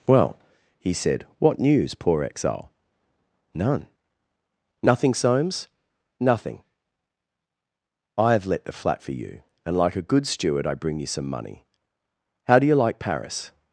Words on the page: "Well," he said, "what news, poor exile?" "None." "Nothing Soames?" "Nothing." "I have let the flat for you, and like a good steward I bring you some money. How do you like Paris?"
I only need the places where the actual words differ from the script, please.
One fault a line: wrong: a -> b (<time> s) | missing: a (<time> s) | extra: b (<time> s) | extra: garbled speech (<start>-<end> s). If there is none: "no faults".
no faults